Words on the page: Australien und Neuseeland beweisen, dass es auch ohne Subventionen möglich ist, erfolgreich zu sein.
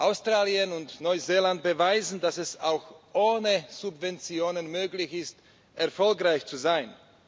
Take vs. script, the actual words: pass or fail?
pass